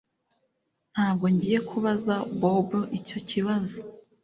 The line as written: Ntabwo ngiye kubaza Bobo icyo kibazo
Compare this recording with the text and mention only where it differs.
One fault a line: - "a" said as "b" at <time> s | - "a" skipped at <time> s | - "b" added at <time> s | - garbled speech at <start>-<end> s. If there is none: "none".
none